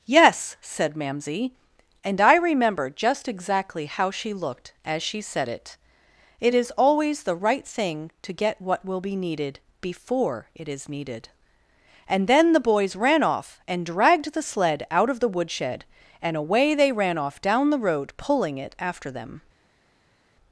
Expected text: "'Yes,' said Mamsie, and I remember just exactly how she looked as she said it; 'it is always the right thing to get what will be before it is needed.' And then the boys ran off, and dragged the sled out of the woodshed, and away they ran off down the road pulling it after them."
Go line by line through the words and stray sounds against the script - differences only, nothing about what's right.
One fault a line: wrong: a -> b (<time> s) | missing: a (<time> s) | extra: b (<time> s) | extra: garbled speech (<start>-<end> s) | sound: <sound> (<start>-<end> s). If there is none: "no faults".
extra: needed (9.2 s)